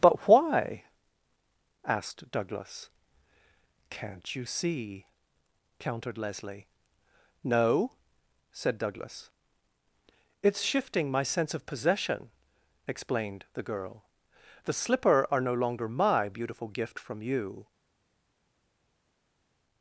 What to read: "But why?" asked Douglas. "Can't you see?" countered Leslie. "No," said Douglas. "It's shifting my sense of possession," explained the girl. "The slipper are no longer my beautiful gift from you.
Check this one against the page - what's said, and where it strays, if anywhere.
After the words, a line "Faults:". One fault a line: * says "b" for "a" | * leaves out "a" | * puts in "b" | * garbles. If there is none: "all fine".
"But why?" asked Douglas. "Can't you see?" countered Leslie. "No," said Douglas. "It's shifting my sense of possession," explained the girl. "The slipper are no longer my beautiful gift from you.
Faults:
all fine